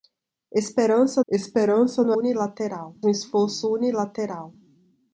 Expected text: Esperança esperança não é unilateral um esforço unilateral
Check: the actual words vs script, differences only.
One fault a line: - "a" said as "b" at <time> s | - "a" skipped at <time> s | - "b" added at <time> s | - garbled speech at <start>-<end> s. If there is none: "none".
none